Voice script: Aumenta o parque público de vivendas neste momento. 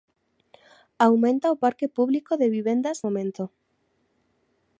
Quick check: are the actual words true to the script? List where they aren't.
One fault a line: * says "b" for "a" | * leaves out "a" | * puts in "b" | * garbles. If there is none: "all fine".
* leaves out "neste"